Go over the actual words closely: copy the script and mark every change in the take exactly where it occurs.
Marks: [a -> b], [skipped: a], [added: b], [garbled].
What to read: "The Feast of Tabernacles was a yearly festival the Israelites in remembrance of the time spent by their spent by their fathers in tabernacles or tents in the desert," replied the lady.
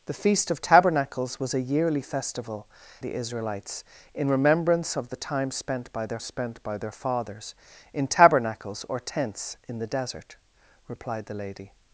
"The Feast of Tabernacles was a yearly festival the Israelites in remembrance of the time spent by their spent by their fathers in tabernacles or tents in the desert," replied the lady.